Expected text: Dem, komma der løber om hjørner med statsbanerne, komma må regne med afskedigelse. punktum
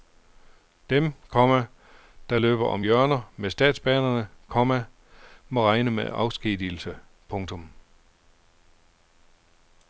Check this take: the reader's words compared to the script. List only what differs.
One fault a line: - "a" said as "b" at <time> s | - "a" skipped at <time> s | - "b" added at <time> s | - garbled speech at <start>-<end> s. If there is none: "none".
none